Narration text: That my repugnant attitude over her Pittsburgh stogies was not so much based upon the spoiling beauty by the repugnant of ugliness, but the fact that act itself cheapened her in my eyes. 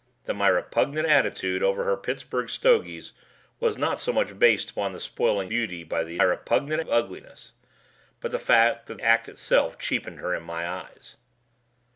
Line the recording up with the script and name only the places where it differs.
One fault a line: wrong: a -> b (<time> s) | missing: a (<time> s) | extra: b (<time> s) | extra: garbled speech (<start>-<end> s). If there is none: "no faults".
no faults